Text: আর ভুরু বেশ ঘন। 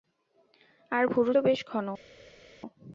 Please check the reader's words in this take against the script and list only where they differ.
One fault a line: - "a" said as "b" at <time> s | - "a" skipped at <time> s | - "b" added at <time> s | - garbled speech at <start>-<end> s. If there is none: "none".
none